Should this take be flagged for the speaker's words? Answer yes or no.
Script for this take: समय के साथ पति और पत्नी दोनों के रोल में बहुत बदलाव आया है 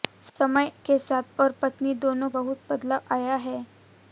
yes